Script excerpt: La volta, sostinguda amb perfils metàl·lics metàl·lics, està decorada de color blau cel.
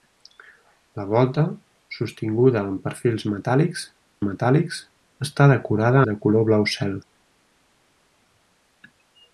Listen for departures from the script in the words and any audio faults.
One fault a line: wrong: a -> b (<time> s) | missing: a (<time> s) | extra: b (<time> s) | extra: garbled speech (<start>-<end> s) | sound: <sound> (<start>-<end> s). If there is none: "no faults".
no faults